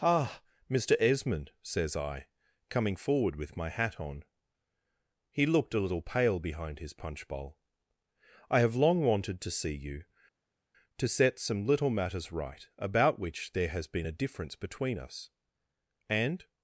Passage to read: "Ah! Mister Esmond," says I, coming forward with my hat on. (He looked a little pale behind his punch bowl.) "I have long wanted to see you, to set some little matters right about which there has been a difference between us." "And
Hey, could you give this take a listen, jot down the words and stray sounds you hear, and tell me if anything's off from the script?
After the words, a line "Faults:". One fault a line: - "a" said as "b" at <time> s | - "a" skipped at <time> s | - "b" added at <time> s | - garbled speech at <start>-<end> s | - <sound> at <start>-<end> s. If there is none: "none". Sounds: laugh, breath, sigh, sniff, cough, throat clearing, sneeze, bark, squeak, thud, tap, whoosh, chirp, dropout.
"Ah! Mister Esmond," says I, coming forward with my hat on. (He looked a little pale behind his punch bowl.) "I have long wanted to see you, to set some little matters right about which there has been a difference between us." "And
Faults:
none